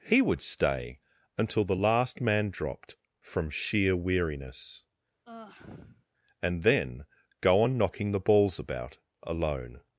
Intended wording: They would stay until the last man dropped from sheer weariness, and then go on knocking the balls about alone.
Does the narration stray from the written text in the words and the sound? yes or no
yes